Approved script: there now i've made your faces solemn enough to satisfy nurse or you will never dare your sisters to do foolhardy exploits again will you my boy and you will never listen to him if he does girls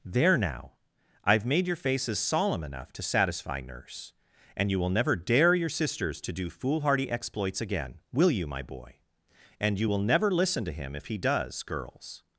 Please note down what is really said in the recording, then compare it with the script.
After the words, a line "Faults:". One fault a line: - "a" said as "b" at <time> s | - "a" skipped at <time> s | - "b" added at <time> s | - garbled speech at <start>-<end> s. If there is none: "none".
there now i've made your faces solemn enough to satisfy nurse and you will never dare your sisters to do foolhardy exploits again will you my boy and you will never listen to him if he does girls
Faults:
- "or" said as "and" at 4.6 s